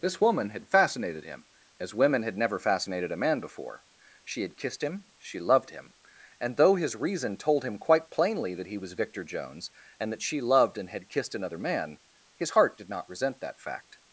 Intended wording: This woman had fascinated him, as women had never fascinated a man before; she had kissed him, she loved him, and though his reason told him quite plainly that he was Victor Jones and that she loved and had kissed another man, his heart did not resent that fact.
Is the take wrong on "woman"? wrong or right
right